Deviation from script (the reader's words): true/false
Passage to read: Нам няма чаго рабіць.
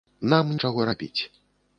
true